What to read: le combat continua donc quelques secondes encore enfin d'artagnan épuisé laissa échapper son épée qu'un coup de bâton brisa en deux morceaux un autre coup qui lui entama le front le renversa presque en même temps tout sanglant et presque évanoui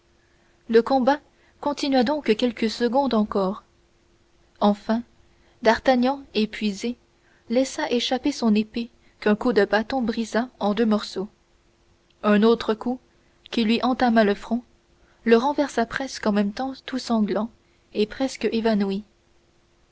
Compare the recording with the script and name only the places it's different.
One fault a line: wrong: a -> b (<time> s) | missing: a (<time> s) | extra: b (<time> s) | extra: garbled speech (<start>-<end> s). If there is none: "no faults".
no faults